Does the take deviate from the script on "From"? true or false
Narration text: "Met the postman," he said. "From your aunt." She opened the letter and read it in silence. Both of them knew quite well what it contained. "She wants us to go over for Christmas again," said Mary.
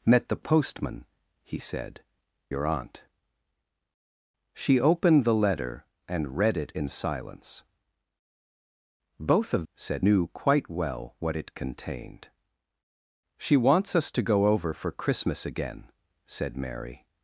true